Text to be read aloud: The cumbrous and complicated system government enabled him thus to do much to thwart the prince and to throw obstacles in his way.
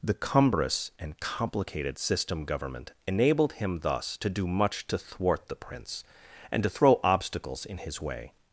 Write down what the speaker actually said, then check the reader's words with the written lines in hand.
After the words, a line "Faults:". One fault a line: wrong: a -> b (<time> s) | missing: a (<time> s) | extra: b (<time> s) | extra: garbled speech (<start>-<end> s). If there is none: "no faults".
The cumbrous and complicated system government enabled him thus to do much to thwart the prince and to throw obstacles in his way.
Faults:
no faults